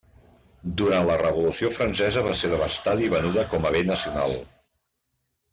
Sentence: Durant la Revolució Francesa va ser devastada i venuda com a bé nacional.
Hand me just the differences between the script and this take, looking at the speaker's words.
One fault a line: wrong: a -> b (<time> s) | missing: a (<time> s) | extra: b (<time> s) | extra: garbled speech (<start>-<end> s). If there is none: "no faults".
no faults